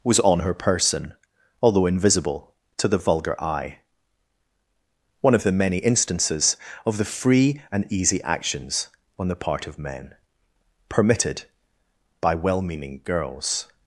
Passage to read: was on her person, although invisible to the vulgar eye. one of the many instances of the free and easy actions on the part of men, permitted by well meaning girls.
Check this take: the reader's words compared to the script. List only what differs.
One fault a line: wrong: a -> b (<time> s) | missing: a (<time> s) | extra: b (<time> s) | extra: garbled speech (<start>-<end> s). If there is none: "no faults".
no faults